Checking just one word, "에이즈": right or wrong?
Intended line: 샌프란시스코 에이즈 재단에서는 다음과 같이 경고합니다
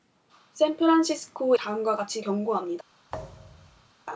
wrong